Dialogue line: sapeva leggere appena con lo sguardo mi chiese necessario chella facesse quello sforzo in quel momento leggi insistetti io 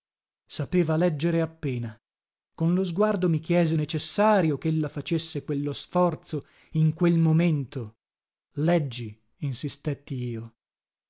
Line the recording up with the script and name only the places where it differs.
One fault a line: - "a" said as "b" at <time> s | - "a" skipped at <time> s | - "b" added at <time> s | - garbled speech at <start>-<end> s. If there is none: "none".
none